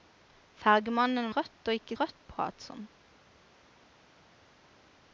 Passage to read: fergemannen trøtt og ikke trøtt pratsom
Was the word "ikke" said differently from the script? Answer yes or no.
no